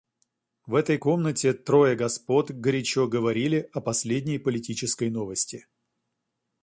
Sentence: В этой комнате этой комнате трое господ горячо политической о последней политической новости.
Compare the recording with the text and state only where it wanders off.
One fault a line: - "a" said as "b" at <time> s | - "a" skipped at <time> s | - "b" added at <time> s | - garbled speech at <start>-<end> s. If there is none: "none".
- "этой комнате" skipped at 1.5 s
- "политической" said as "говорили" at 3.1 s